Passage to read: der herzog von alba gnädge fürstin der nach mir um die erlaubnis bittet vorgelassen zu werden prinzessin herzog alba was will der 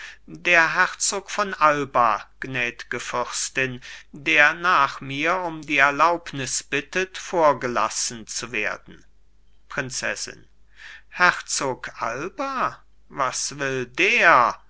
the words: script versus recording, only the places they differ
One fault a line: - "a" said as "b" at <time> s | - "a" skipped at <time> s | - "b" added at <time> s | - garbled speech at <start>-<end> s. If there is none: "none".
none